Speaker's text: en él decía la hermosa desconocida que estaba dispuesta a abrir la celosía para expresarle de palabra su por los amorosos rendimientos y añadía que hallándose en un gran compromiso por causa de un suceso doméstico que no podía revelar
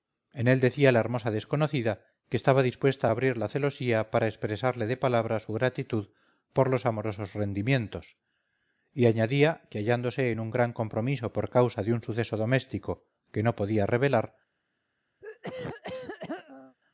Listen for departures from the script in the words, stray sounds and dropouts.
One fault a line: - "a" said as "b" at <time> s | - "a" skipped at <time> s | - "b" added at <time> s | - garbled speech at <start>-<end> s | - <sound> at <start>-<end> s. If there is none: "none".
- "gratitud" added at 5.5 s
- throat clearing at 15.2-16.8 s